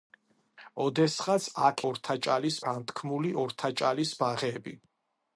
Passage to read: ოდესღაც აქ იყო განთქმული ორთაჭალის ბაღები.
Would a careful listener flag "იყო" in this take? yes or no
yes